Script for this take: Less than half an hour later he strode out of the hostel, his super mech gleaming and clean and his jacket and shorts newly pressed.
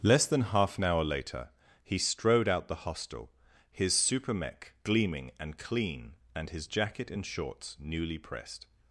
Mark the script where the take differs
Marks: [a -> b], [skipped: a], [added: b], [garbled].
Less than half an hour later he strode out [skipped: of] the hostel, his super mech gleaming and clean and his jacket and shorts newly pressed.